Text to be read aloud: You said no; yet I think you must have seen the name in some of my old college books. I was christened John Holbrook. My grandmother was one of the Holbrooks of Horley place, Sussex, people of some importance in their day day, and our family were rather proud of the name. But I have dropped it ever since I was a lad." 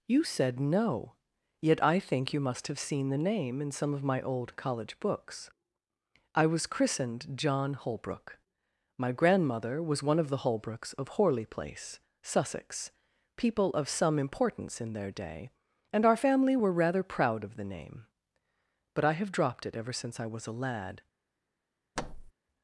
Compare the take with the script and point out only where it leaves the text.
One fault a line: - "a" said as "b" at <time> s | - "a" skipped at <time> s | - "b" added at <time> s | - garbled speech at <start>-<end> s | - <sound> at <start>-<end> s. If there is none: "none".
- "day" skipped at 15.5 s
- thud at 22.0-22.3 s